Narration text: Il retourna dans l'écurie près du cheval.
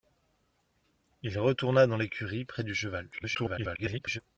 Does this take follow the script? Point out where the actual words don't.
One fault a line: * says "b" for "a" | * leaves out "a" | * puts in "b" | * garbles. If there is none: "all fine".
* garbles